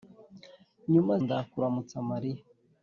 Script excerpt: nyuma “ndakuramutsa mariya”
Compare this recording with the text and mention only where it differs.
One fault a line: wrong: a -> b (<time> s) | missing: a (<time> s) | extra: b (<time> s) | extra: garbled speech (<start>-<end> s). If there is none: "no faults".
no faults